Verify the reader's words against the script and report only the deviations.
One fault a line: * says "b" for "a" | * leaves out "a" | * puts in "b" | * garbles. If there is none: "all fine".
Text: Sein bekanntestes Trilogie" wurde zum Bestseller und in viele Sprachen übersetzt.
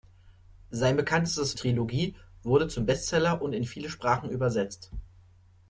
all fine